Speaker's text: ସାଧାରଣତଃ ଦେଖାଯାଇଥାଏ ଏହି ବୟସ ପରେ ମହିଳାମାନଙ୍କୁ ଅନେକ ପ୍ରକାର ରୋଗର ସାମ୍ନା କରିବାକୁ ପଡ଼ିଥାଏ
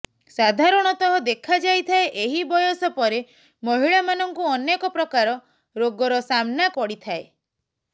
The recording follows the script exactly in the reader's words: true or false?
false